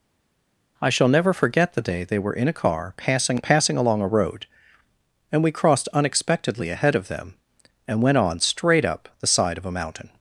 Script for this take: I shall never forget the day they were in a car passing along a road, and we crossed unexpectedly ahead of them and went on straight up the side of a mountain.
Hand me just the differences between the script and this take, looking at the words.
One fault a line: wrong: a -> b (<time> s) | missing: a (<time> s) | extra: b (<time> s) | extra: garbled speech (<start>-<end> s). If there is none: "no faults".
extra: passing (3.4 s)